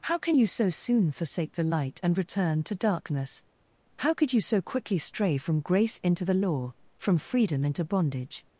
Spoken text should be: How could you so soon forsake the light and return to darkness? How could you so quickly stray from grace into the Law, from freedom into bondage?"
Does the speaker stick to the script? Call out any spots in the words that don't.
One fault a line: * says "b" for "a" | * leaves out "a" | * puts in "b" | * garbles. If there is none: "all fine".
* says "can" for "could"